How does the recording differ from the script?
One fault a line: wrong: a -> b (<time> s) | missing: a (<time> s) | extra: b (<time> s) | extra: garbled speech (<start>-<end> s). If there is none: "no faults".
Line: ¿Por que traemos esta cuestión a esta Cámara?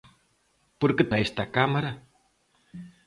missing: traemos esta cuestión (1.0 s)